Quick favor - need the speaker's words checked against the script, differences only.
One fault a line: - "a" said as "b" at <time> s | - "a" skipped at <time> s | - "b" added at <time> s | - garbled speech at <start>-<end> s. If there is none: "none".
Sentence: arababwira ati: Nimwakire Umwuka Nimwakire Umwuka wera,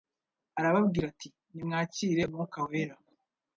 - "Nimwakire Umwuka" skipped at 2.6 s